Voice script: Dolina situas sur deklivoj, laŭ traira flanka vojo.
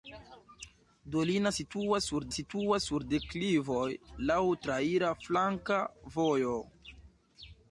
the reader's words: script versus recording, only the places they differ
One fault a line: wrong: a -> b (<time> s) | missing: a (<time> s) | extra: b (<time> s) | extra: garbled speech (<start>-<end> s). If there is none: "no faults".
extra: situas sur (2.4 s)